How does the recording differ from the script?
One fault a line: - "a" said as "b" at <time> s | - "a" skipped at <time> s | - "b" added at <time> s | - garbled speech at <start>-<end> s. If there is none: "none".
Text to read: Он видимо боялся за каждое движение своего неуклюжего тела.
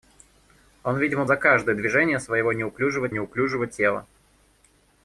- "боялся" skipped at 1.2 s
- "неуклюжего" added at 3.1 s